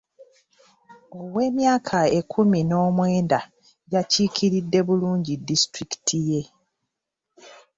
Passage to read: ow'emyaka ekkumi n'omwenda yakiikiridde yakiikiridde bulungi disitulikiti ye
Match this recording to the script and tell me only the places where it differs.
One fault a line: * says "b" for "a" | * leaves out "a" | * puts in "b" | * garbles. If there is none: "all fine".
* leaves out "yakiikiridde"